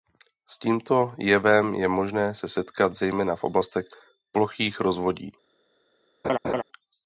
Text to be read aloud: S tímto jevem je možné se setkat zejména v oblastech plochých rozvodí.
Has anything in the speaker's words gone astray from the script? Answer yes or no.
no